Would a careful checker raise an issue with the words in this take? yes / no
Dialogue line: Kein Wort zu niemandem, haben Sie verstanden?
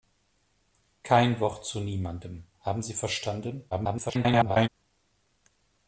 yes